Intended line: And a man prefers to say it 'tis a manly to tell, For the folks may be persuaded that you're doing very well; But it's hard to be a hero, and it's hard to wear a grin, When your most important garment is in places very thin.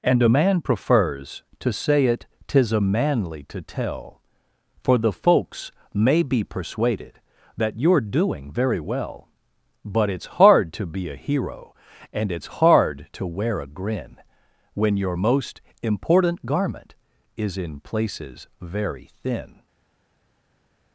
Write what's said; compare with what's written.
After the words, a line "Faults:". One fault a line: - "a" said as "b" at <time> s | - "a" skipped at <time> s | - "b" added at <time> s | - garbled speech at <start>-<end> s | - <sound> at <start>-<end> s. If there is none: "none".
And a man prefers to say it 'tis a manly to tell, For the folks may be persuaded that you're doing very well; But it's hard to be a hero, and it's hard to wear a grin, When your most important garment is in places very thin.
Faults:
none